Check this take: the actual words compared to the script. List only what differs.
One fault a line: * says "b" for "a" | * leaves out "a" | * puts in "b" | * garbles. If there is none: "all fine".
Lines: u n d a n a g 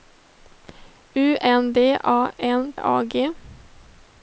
all fine